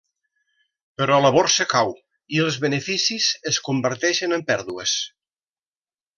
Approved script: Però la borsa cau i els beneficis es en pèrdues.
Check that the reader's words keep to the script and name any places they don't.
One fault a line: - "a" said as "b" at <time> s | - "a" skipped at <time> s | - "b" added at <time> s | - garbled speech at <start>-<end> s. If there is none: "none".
- "converteixen" added at 3.7 s